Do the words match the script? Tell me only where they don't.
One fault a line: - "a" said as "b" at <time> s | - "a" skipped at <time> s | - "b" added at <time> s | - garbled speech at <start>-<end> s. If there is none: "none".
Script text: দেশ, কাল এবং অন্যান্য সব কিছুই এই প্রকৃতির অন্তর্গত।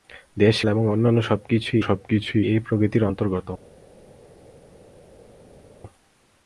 - "কাল" skipped at 0.6 s
- "সব কিছুই" added at 1.8 s